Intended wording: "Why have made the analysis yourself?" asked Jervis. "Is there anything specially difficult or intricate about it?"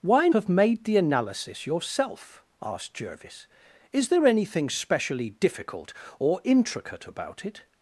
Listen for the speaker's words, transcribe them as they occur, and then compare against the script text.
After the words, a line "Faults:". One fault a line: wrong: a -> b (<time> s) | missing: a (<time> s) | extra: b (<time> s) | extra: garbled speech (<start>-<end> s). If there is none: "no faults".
"Why have made the analysis yourself?" asked Jervis. "Is there anything specially difficult or intricate about it?"
Faults:
no faults